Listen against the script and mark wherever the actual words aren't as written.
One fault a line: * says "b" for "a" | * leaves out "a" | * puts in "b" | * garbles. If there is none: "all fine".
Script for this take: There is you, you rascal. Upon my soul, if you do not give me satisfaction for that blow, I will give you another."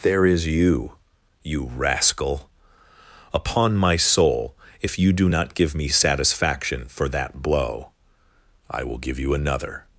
all fine